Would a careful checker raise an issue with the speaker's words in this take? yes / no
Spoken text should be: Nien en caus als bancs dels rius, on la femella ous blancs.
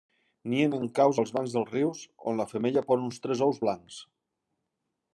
yes